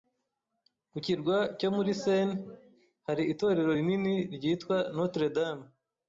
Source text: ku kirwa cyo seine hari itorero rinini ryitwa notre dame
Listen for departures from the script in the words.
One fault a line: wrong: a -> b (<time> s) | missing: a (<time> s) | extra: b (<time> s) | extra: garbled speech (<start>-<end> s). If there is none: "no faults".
extra: muri (1.8 s)